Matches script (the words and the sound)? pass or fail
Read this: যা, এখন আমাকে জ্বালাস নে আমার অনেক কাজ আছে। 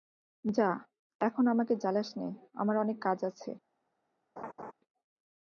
fail